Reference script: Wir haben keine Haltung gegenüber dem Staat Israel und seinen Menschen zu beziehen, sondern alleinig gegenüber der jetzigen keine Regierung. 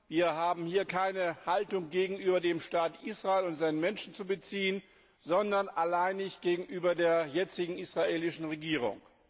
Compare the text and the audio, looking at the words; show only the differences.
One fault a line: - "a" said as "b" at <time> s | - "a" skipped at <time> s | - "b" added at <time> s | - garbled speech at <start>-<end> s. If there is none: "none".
- "hier" added at 0.7 s
- "keine" said as "israelischen" at 7.8 s